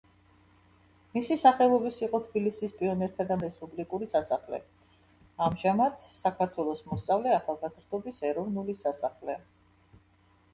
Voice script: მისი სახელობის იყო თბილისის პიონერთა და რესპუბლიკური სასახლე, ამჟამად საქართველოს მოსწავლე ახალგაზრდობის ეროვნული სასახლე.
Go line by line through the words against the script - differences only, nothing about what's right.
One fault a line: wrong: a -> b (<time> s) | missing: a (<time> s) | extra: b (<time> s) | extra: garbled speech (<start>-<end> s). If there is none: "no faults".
no faults